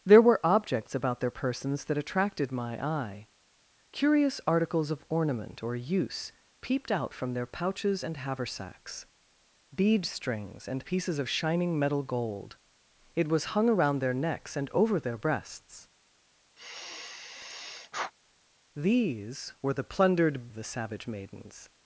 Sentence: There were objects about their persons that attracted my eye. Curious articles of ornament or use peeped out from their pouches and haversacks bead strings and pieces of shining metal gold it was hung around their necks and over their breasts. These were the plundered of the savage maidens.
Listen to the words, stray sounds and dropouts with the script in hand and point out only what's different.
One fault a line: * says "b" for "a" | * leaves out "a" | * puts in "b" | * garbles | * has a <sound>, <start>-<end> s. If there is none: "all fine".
* has a sigh, 16.6-18.1 s